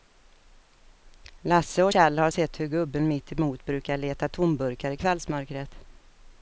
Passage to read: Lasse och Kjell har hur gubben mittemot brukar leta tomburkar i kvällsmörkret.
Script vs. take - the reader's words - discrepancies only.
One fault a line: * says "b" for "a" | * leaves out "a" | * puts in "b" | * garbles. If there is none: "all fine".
* puts in "sett"